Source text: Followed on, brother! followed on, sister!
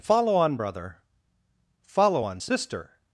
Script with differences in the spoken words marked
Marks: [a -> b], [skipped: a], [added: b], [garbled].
[Followed -> Follow] on, brother! [followed -> follow] on, sister!